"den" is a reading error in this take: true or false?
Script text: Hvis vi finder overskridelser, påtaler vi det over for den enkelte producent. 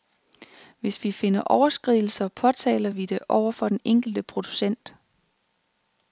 false